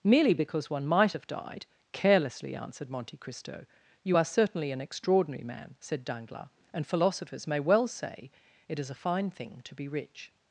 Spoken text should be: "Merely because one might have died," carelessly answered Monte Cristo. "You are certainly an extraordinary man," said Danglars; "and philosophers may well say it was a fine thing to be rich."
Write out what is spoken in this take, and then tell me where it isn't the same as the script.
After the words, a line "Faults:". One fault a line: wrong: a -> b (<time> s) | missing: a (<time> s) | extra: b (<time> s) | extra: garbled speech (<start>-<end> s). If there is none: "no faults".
"Merely because one might have died," carelessly answered Monte Cristo. "You are certainly an extraordinary man," said Danglars; "and philosophers may well say it is a fine thing to be rich."
Faults:
wrong: was -> is (8.8 s)